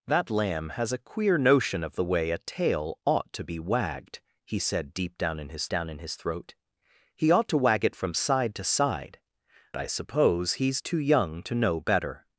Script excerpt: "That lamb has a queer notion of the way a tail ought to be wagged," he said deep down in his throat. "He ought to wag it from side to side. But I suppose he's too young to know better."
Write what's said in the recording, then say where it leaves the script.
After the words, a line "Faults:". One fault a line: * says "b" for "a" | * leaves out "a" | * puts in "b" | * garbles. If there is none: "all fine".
"That lamb has a queer notion of the way a tail ought to be wagged," he said deep down in his down in his throat. "He ought to wag it from side to side. I suppose he's too young to know better."
Faults:
* puts in "down in his"
* leaves out "But"